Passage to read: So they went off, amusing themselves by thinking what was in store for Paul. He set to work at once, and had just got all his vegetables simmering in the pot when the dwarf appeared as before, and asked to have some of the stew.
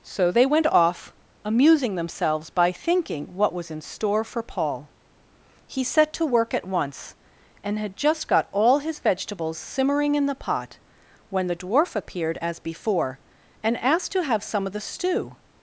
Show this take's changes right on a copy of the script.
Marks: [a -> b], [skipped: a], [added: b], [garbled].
So they went off, amusing themselves by thinking what was in store for Paul. He set to work at once, and had just got all his vegetables simmering in the pot when the dwarf appeared as before, and asked to have some of the stew.